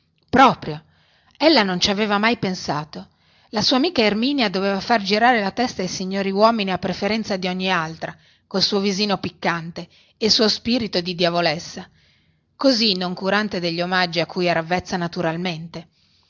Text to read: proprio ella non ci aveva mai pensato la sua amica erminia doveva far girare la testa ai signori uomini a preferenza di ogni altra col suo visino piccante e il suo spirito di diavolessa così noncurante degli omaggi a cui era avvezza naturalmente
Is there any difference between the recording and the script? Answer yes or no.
no